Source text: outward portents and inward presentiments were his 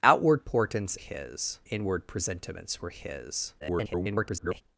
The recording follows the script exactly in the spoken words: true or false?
false